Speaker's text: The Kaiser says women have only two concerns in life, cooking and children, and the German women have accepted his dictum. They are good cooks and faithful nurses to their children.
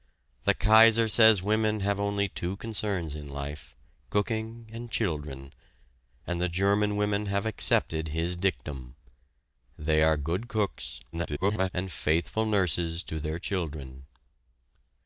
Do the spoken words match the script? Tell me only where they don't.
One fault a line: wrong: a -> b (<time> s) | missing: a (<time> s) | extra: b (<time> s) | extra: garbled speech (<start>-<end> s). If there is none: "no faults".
extra: garbled speech (11.1-11.7 s)